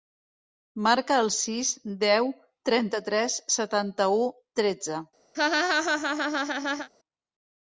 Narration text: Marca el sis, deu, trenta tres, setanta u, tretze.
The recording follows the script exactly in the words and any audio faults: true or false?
false